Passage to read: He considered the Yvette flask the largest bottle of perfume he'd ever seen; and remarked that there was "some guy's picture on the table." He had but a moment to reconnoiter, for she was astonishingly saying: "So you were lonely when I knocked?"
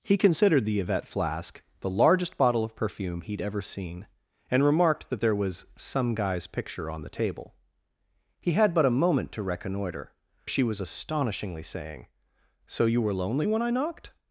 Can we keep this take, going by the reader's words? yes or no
no